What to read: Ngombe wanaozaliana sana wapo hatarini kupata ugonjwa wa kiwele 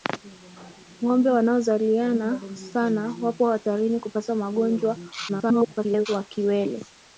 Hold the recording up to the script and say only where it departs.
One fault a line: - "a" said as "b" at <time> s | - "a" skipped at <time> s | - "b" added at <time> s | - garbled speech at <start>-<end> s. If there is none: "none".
- garbled speech at 5.3-6.1 s